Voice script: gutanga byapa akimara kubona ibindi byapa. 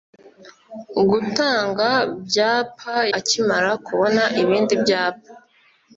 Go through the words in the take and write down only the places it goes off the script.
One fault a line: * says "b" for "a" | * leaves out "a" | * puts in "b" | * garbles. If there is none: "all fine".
all fine